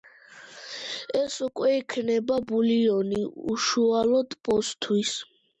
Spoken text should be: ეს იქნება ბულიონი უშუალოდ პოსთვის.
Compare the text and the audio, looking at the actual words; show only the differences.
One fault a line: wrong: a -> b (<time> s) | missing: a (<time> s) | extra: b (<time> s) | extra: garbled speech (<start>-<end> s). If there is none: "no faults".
extra: უკვე (1.5 s)